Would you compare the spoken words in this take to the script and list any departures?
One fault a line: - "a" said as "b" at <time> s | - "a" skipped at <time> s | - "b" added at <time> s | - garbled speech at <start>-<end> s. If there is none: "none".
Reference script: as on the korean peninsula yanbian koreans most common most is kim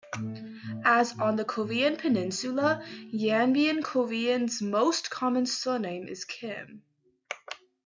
- "most" said as "surname" at 5.5 s